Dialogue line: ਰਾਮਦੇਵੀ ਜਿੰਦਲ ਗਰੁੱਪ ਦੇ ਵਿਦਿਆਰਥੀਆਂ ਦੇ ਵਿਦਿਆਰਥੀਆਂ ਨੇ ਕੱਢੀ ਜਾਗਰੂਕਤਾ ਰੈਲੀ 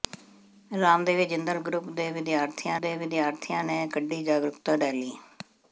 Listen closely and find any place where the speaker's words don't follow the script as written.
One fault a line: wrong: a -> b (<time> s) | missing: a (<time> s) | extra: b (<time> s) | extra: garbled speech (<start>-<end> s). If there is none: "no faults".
no faults